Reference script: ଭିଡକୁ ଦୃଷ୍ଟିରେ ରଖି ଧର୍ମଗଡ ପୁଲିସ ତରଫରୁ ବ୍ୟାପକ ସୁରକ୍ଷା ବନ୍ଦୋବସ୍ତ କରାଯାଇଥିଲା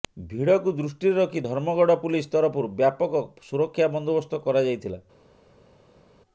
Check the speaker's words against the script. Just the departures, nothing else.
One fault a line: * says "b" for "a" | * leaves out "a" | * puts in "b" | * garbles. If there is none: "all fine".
all fine